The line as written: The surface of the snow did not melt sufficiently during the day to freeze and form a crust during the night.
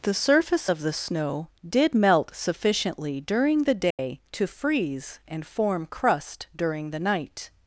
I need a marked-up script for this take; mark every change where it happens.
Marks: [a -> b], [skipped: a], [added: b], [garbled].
The surface of the snow did [skipped: not] melt sufficiently during the day to freeze and form [skipped: a] crust during the night.